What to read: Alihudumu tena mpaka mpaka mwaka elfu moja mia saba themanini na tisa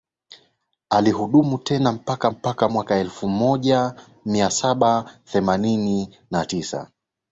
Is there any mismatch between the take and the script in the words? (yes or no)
no